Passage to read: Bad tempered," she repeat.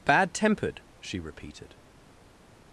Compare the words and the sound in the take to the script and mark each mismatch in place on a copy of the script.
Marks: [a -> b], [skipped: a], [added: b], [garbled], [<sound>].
Bad tempered," she [repeat. -> repeated]